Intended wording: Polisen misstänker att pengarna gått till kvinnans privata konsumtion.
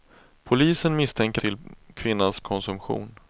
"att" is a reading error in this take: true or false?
true